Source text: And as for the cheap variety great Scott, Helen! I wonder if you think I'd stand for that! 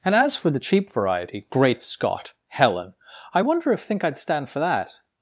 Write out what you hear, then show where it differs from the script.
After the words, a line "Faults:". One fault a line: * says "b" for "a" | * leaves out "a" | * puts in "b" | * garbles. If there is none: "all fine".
And as for the cheap variety great Scott, Helen! I wonder if think I'd stand for that!
Faults:
* leaves out "you"